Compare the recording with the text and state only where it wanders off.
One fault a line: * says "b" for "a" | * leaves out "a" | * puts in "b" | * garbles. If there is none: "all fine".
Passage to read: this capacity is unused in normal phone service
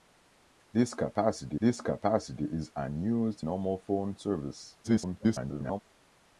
* puts in "this capacity"
* leaves out "in"
* garbles